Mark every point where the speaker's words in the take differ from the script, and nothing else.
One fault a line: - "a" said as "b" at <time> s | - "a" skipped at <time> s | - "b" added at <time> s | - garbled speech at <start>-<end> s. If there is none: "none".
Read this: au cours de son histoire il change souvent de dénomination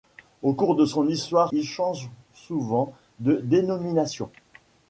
none